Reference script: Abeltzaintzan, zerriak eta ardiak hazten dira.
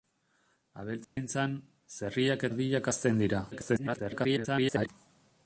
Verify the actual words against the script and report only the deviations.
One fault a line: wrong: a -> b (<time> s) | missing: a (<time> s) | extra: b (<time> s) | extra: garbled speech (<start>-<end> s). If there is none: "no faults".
missing: eta (2.5 s)
extra: garbled speech (3.5-4.9 s)